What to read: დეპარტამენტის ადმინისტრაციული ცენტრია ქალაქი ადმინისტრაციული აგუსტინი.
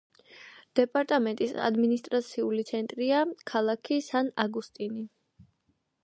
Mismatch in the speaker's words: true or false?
true